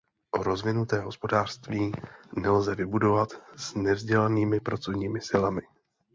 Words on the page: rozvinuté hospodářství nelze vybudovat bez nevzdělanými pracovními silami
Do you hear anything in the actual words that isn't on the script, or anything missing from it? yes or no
yes